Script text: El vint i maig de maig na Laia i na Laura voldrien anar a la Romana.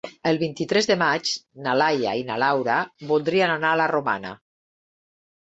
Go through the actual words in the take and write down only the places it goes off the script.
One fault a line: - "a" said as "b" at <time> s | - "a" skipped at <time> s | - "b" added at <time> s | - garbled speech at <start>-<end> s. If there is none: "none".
- "maig" said as "tres" at 0.7 s